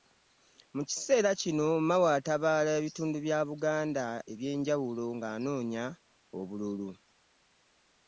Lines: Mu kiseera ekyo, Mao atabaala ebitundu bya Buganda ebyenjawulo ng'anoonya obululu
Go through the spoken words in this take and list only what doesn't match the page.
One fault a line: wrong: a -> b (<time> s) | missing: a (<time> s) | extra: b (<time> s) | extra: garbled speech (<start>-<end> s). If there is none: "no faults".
wrong: ekyo -> kino (1.4 s)